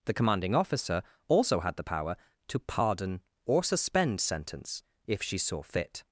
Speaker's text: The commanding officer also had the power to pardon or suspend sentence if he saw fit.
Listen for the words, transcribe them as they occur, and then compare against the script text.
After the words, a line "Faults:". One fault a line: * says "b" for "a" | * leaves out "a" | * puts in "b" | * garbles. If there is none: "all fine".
The commanding officer also had the power to pardon or suspend sentence if she saw fit.
Faults:
* says "she" for "he"